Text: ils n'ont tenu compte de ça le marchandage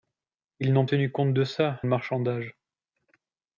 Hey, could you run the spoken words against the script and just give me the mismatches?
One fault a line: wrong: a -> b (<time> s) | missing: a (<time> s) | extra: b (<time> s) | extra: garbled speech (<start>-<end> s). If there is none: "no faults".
no faults